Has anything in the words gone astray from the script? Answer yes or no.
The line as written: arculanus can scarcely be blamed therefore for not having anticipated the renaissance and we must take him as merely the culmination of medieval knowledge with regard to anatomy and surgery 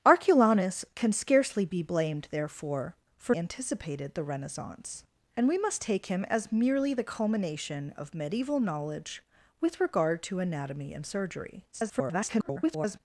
yes